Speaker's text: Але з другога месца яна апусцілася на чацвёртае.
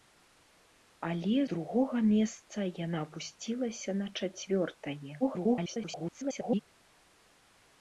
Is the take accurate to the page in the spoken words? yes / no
no